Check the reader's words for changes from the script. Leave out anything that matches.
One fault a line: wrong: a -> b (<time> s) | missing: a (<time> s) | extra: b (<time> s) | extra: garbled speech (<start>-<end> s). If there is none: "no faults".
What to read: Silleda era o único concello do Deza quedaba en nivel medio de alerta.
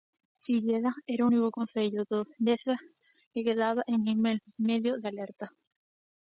extra: que (3.3 s)